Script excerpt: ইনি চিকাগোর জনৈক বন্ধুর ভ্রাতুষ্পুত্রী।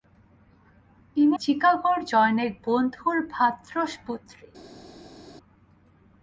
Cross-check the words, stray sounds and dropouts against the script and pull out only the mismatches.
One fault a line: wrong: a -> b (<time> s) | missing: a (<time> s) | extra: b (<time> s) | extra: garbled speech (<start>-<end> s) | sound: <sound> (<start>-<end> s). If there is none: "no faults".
no faults